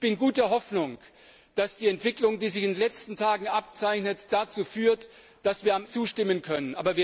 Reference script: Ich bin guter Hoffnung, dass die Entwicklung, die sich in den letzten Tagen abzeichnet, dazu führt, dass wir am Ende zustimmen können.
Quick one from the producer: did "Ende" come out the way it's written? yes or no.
no